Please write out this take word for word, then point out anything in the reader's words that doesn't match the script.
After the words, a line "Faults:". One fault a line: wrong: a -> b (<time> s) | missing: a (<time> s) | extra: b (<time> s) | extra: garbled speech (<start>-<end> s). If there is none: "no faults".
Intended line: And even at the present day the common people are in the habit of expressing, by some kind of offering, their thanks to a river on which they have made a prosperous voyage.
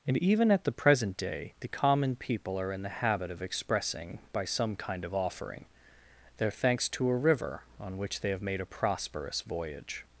And even at the present day the common people are in the habit of expressing, by some kind of offering, their thanks to a river on which they have made a prosperous voyage.
Faults:
no faults